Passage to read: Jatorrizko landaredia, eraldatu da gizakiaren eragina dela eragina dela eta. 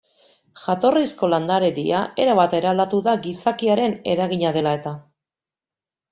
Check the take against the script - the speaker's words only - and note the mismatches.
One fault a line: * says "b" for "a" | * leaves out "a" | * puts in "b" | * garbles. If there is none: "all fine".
* puts in "erabat"
* leaves out "eragina dela"